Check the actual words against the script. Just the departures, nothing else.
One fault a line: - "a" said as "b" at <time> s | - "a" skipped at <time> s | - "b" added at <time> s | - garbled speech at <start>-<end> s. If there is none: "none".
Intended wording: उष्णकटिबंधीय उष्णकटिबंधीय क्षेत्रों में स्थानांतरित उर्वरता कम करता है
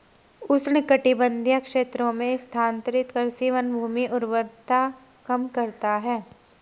- "उष्णकटिबंधीय" skipped at 1.6 s
- "कृषि वनभूमि" added at 3.1 s